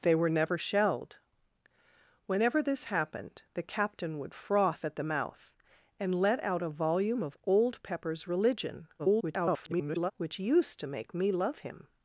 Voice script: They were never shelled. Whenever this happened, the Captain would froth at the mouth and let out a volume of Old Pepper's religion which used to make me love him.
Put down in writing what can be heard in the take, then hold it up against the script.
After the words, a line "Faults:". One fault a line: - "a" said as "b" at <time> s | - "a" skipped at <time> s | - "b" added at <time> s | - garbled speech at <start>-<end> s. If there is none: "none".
They were never shelled. Whenever this happened, the Captain would froth at the mouth and let out a volume of Old Pepper's religion [garbled] which used to make me love him.
Faults:
- garbled speech at 9.0-10.1 s